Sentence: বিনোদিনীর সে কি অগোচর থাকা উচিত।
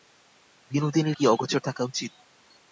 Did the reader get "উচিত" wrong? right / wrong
right